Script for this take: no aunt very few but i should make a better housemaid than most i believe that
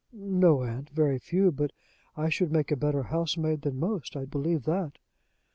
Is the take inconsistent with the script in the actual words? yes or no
no